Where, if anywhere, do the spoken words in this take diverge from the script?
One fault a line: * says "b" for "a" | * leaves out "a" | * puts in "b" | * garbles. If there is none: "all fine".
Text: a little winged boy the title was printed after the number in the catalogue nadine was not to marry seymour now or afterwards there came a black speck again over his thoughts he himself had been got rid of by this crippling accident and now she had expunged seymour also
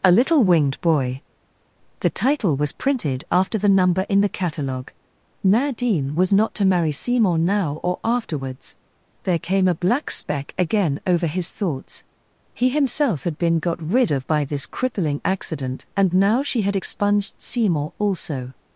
all fine